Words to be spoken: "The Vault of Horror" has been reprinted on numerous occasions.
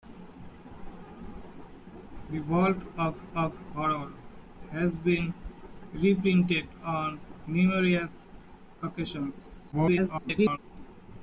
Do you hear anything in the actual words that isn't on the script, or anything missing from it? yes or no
yes